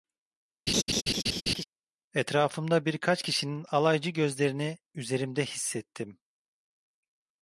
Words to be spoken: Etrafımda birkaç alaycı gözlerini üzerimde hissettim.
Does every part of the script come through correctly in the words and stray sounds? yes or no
no